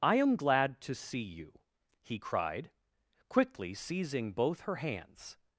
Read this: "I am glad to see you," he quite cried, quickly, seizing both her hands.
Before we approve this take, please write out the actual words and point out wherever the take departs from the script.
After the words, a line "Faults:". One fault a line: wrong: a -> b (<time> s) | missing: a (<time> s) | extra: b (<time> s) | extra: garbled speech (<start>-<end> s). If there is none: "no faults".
"I am glad to see you," he cried, quickly, seizing both her hands.
Faults:
missing: quite (2.2 s)